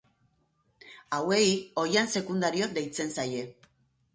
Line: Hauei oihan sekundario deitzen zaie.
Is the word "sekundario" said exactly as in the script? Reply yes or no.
yes